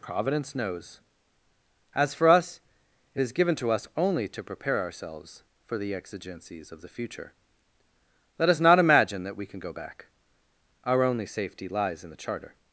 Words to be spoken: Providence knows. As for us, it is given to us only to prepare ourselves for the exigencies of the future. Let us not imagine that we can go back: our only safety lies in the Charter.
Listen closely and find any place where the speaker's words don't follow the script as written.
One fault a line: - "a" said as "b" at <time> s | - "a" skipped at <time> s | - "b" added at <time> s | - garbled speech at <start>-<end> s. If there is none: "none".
none